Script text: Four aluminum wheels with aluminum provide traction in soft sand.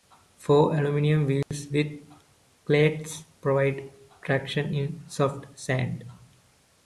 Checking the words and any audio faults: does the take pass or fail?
fail